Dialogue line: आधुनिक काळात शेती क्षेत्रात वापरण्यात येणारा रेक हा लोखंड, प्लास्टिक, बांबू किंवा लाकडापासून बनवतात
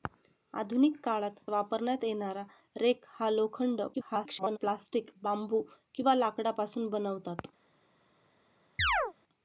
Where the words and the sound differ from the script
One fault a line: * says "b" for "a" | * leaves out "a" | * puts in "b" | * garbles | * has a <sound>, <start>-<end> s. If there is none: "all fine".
* leaves out "शेती क्षेत्रात"
* garbles
* has a chirp, 8.8-9.1 s